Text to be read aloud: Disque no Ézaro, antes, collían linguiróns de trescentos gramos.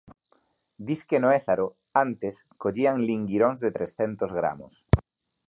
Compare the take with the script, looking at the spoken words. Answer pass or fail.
pass